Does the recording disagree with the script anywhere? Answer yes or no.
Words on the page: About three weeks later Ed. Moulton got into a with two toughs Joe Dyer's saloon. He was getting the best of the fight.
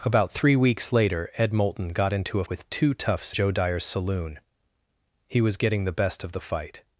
no